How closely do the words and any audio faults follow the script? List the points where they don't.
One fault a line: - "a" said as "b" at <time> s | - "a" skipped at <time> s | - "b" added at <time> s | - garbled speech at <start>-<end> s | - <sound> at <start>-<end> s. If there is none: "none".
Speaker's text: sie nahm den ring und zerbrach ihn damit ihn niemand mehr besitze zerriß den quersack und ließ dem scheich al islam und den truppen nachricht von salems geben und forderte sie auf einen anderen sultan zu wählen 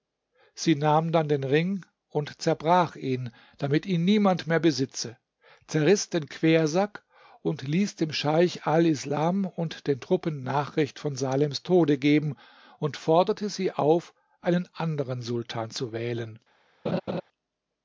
- "dann" added at 1.1 s
- "tode" added at 11.6 s
- laugh at 16.8-17.2 s